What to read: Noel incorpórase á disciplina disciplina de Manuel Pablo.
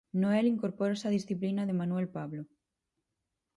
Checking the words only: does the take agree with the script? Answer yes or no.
no